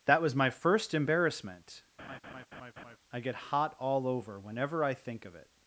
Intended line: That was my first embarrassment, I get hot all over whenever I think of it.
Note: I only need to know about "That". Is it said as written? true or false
true